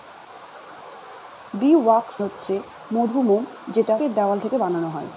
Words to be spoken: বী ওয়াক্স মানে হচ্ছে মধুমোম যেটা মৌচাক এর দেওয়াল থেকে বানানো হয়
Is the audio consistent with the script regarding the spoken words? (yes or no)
no